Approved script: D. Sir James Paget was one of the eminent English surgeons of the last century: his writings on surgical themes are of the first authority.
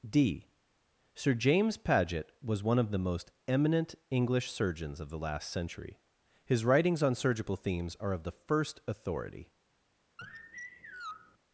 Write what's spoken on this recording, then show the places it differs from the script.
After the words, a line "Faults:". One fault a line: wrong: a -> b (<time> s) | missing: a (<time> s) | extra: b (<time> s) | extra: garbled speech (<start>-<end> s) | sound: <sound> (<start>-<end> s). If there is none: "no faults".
D. Sir James Paget was one of the most eminent English surgeons of the last century: his writings on surgical themes are of the first authority.
Faults:
extra: most (3.0 s)
sound: sigh (10.2-11.4 s)